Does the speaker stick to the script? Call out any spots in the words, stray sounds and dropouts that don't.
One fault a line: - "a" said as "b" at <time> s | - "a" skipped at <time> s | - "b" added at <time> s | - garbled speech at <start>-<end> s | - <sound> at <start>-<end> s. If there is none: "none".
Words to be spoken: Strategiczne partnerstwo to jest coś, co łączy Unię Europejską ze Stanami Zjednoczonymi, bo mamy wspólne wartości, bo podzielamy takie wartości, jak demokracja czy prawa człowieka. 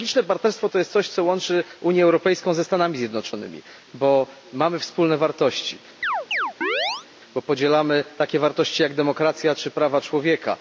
- chirp at 6.0-7.1 s